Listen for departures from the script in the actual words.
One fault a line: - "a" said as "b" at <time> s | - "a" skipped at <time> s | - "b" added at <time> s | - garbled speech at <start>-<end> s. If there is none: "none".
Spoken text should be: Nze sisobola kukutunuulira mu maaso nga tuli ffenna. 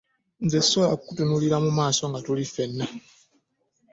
none